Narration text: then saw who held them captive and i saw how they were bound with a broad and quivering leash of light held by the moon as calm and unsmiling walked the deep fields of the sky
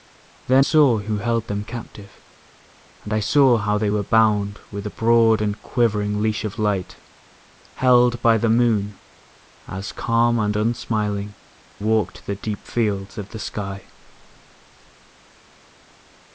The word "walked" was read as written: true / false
true